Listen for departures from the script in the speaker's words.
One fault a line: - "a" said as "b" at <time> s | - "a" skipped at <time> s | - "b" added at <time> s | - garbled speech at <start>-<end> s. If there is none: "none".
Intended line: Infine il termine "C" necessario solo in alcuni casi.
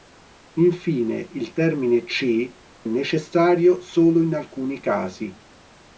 none